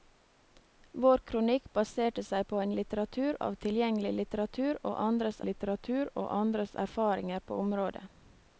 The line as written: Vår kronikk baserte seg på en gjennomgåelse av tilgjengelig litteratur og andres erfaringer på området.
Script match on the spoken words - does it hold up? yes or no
no